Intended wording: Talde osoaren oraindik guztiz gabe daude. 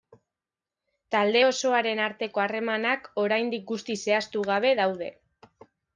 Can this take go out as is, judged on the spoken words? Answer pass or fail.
fail